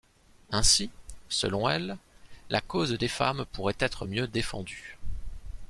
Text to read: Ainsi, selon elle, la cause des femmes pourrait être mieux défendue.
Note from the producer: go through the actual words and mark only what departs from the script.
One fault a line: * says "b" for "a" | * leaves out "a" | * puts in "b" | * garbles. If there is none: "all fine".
all fine